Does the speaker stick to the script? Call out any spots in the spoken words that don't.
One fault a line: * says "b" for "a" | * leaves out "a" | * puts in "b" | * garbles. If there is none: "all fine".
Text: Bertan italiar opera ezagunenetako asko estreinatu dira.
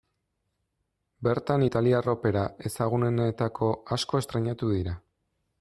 all fine